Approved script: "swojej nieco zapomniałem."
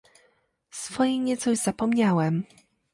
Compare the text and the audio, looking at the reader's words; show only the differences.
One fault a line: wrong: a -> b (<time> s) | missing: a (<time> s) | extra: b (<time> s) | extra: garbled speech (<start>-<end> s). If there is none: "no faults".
extra: już (1.5 s)